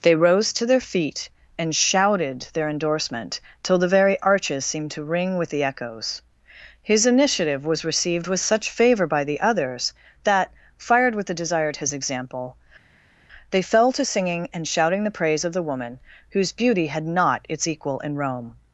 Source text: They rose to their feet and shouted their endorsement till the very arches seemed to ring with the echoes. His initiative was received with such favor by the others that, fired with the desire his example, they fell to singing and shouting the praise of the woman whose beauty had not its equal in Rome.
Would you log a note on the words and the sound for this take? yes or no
no